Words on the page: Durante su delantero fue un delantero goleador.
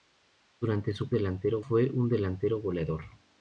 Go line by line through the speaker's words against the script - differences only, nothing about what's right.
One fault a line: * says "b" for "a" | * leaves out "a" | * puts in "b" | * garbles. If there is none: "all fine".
all fine